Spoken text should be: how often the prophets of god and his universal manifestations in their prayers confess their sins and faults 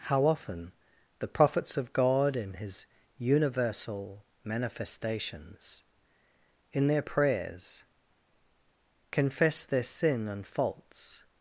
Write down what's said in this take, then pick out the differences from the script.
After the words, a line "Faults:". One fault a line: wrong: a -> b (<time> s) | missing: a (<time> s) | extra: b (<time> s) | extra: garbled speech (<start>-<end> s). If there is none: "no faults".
how often the prophets of god in his universal manifestations in their prayers confess their sin and faults
Faults:
wrong: and -> in (2.4 s)
wrong: sins -> sin (9.8 s)